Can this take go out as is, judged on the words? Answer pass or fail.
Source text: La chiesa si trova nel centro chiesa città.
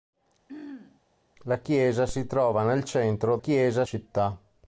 pass